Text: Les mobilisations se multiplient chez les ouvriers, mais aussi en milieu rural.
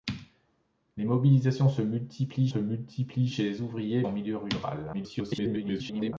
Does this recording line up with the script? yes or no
no